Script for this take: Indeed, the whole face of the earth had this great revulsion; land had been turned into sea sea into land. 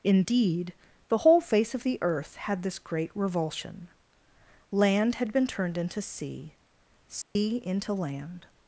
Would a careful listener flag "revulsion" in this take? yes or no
no